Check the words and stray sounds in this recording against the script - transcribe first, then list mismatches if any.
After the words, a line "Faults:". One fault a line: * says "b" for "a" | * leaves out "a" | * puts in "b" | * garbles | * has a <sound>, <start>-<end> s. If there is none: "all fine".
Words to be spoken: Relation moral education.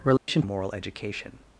Relation moral education.
Faults:
* has a dropout, 0.2-0.3 s